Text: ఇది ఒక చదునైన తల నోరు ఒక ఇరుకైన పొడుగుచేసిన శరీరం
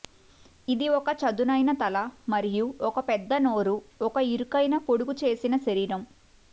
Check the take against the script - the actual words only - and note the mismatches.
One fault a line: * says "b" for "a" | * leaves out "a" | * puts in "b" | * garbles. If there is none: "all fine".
* puts in "మరియు ఒక పెద్ద"